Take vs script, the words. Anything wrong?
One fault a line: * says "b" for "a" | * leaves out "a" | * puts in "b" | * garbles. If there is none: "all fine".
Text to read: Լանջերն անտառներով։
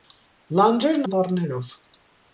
all fine